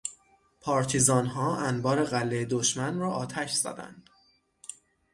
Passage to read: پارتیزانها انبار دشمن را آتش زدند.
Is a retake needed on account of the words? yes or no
yes